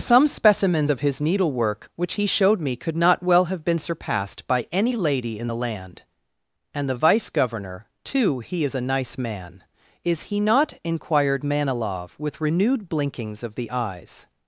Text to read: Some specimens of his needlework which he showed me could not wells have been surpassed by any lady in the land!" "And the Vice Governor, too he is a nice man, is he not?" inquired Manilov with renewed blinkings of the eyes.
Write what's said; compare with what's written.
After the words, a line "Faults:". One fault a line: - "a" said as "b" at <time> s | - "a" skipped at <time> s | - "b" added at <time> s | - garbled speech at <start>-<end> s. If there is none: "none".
Some specimens of his needlework which he showed me could not well have been surpassed by any lady in the land!" "And the Vice Governor, too he is a nice man, is he not?" inquired Manilov with renewed blinkings of the eyes.
Faults:
- "wells" said as "well" at 3.2 s